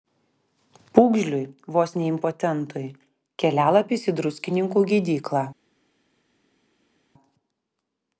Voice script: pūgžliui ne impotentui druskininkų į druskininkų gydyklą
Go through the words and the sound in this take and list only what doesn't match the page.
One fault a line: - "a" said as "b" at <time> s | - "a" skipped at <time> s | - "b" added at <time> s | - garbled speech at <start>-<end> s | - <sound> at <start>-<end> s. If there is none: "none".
- "vos" added at 1.8 s
- "druskininkų" said as "kelialapis" at 3.4 s